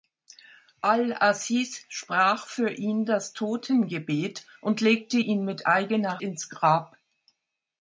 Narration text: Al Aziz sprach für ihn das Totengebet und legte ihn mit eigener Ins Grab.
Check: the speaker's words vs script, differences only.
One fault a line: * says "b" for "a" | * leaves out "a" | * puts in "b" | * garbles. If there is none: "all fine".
all fine